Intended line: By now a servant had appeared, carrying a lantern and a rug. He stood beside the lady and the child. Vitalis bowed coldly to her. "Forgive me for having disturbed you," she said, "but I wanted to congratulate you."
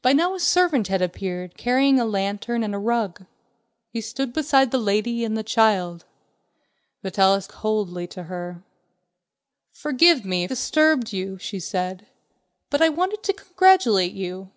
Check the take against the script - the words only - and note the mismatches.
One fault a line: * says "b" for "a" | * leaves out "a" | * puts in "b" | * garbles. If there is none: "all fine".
* leaves out "bowed"
* leaves out "for having"